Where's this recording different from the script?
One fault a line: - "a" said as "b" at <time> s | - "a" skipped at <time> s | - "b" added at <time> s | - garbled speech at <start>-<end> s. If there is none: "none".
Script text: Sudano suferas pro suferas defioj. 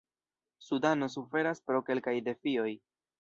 - "suferas" said as "kelkaj" at 1.9 s